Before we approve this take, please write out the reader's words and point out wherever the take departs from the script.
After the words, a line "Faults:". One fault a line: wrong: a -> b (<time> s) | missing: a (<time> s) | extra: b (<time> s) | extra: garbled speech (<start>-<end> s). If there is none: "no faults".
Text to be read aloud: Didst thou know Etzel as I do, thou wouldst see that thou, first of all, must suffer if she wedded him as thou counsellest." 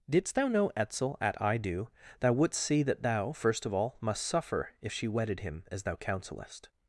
Didst thou know Etzel at I do, thou wouldst see that thou, first of all, must suffer if she wedded him as thou counsellest."
Faults:
wrong: as -> at (1.2 s)